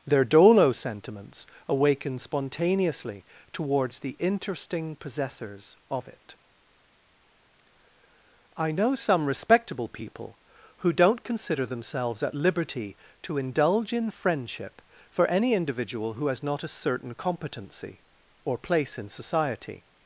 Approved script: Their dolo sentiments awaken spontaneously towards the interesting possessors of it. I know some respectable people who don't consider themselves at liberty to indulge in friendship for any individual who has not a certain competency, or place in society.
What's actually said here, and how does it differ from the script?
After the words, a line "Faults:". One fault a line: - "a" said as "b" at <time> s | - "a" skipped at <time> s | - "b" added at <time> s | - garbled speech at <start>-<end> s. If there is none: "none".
Their dolo sentiments awaken spontaneously towards the interesting possessors of it. I know some respectable people who don't consider themselves at liberty to indulge in friendship for any individual who has not a certain competency, or place in society.
Faults:
none